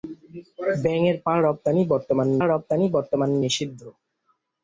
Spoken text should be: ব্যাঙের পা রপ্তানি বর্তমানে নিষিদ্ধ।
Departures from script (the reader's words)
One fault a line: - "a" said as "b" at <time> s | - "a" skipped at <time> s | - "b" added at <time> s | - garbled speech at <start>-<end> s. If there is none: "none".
- "রপ্তানি বর্তমানে" added at 2.4 s